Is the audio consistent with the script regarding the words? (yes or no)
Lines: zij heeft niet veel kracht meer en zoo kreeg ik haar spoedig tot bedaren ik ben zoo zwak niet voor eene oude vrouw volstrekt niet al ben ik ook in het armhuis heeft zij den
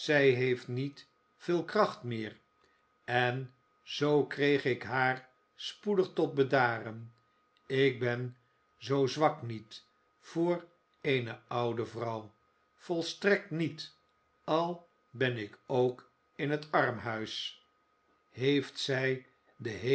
yes